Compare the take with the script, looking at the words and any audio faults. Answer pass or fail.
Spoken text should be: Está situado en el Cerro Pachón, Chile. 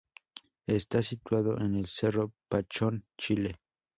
pass